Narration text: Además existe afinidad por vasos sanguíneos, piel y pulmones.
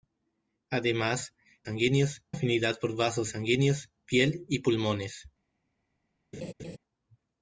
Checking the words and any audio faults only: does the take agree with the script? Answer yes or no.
no